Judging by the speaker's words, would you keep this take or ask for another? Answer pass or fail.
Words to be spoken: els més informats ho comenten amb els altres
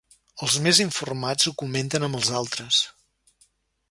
pass